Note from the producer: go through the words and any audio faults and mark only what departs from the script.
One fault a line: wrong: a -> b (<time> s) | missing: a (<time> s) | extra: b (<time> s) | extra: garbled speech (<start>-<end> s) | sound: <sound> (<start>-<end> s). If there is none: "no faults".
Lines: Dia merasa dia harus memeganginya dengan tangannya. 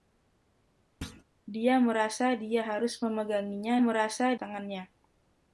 sound: thud (1.0-1.2 s)
wrong: dengan -> merasa (3.8 s)